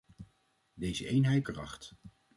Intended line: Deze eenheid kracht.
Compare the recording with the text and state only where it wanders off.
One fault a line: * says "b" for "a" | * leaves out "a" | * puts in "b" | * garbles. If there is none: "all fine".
all fine